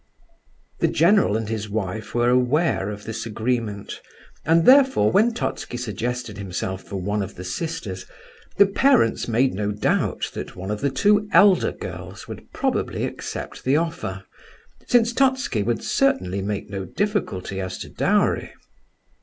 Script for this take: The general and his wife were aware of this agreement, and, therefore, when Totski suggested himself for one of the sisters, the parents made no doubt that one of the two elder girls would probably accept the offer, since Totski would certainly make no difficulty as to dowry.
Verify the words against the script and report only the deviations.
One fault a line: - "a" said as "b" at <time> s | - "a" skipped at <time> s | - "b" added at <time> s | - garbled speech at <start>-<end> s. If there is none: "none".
none